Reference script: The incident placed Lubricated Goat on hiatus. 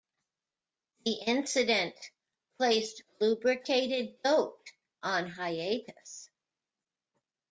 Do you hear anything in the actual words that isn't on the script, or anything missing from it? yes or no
no